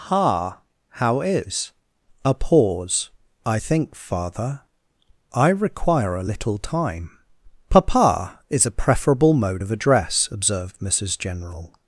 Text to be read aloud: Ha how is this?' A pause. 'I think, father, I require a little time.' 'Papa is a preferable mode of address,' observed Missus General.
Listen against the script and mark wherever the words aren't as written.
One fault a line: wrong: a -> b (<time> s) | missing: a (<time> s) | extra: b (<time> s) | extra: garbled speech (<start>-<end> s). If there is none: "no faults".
missing: this (1.7 s)